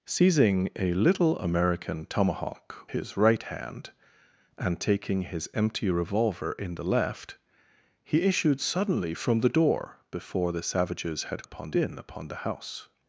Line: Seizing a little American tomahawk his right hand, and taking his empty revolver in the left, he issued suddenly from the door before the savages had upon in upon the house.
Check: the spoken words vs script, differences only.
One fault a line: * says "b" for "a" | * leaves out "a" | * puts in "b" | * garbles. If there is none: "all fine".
all fine